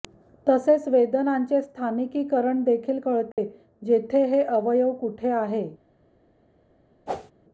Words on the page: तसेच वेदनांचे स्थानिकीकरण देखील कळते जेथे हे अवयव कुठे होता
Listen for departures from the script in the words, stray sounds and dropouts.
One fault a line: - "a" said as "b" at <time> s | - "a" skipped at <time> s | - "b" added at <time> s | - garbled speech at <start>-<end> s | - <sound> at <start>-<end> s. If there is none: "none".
- dropout at 3.3-3.4 s
- "होता" said as "आहे" at 5.3 s
- whoosh at 7.1-7.3 s